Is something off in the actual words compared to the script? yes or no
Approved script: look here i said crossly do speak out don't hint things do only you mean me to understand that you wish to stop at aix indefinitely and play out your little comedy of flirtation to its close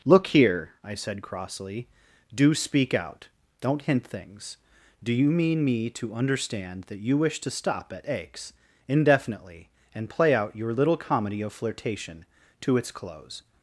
yes